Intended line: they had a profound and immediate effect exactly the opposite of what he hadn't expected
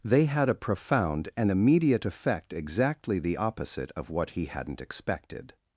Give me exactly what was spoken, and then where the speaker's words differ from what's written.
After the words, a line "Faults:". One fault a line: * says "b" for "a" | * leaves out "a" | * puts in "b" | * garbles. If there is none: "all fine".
they had a profound and immediate effect exactly the opposite of what he hadn't expected
Faults:
all fine